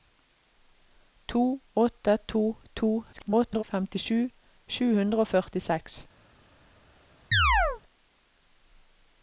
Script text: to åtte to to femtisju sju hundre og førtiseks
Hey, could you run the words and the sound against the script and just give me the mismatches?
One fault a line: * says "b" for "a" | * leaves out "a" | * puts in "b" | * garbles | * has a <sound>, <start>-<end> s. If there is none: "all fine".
* garbles
* has a chirp, 7.3-7.8 s